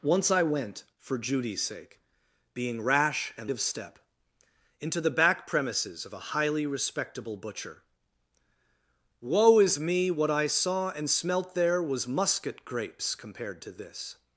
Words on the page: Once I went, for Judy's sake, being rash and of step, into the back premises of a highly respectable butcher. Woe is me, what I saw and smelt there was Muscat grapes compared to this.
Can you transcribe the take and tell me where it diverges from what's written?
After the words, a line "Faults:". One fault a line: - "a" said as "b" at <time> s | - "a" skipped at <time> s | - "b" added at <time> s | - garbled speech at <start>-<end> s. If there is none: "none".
Once I went, for Judy's sake, being rash and of step, into the back premises of a highly respectable butcher. Woe is me, what I saw and smelt there was Muscat grapes compared to this.
Faults:
none